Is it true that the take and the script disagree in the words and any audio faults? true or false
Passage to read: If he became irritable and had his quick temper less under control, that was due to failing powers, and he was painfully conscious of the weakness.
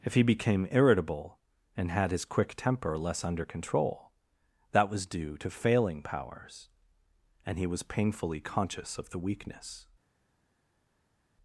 false